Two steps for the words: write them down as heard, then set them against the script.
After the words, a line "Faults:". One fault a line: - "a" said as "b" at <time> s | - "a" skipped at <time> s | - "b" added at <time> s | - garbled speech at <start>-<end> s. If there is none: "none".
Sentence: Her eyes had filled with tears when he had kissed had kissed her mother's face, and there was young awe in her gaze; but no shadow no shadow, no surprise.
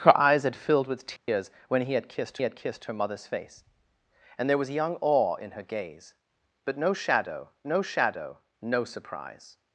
Her eyes had filled with tears when he had kissed had kissed her mother's face, and there was young awe in her gaze; but no shadow no shadow, no surprise.
Faults:
none